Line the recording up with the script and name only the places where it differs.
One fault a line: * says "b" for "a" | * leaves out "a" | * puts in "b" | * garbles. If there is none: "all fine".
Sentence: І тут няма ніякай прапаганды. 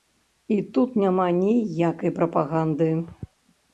all fine